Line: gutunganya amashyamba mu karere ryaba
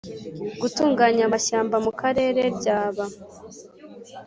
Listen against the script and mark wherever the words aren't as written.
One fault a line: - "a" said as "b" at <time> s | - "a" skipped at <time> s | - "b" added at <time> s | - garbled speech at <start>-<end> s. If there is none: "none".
none